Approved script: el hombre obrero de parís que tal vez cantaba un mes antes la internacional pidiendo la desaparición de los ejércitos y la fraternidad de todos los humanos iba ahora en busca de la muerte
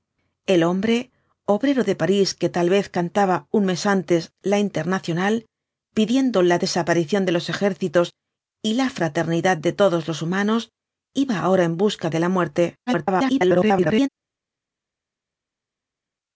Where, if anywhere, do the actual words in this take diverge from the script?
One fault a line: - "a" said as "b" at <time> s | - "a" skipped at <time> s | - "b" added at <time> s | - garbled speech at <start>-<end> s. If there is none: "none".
- garbled speech at 12.9-14.1 s